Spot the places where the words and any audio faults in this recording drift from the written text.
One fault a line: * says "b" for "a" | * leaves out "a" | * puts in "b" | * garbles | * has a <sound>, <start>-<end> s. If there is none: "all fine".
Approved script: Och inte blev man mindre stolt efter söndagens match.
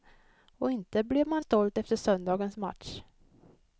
* leaves out "mindre"